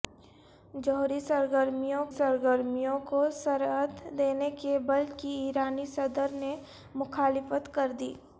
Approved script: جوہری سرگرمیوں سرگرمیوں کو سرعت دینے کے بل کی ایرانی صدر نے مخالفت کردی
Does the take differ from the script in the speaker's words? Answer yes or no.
no